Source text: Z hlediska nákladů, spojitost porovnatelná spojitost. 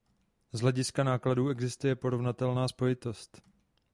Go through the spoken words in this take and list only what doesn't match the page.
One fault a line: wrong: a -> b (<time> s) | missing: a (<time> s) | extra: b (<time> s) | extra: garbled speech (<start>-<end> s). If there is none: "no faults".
wrong: spojitost -> existuje (1.5 s)